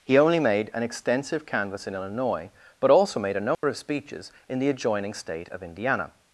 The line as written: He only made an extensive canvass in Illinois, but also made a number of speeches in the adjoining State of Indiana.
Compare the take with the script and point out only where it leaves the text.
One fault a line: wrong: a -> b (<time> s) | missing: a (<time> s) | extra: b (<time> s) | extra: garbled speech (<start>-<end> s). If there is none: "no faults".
no faults